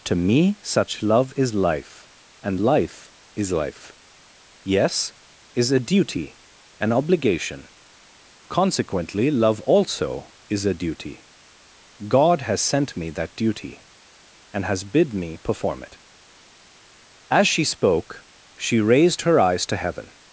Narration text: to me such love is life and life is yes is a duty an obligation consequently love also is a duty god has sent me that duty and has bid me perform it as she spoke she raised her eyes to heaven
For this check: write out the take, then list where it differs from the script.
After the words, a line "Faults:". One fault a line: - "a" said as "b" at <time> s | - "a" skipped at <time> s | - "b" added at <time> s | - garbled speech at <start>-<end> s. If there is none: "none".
to me such love is life and life is life yes is a duty an obligation consequently love also is a duty god has sent me that duty and has bid me perform it as she spoke she raised her eyes to heaven
Faults:
- "life" added at 3.5 s